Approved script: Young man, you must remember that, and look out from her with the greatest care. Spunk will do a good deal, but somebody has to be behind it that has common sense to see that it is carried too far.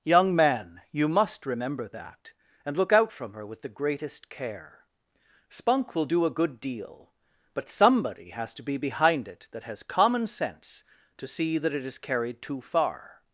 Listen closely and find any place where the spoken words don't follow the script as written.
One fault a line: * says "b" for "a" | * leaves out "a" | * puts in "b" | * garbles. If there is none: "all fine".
all fine